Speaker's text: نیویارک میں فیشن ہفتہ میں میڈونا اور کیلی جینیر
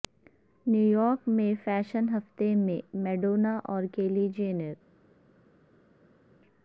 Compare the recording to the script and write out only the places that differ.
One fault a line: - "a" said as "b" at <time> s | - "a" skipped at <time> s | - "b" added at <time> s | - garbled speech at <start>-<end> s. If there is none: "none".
none